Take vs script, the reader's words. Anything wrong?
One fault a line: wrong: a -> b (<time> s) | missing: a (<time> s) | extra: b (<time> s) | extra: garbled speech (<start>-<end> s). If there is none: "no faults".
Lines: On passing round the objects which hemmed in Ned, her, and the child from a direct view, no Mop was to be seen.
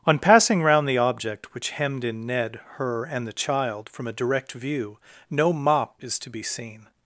wrong: objects -> object (1.0 s)
wrong: was -> is (6.0 s)